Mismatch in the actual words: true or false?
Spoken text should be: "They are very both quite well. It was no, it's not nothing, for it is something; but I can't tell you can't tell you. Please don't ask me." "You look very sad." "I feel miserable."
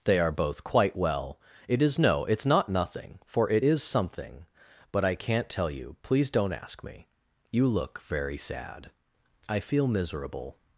true